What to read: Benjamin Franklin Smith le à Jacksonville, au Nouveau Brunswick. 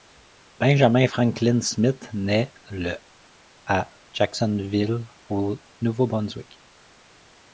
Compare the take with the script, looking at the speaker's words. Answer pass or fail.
fail